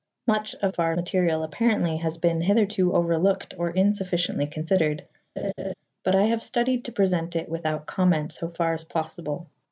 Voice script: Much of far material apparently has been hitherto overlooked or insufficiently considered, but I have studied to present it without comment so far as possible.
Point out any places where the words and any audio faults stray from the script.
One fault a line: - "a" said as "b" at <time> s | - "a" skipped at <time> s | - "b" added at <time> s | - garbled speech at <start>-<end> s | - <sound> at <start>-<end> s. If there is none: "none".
- laugh at 5.4-5.7 s